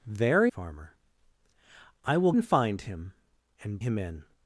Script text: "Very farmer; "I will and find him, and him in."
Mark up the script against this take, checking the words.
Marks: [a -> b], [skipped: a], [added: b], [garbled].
"Very farmer; "I will and find him, and him in."